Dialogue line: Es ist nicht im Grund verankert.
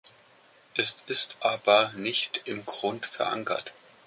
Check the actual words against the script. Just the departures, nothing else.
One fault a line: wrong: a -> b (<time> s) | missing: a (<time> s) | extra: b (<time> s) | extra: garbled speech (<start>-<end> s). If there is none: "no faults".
extra: aber (1.4 s)